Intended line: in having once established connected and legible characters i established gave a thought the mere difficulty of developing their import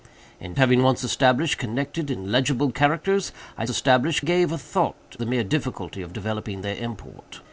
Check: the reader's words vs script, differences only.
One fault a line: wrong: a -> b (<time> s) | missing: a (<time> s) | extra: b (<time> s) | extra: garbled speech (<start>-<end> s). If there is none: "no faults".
no faults